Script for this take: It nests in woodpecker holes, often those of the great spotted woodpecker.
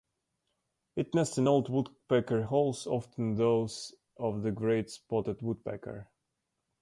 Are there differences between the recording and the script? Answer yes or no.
yes